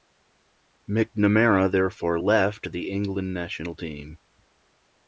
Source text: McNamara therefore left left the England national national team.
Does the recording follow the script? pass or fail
fail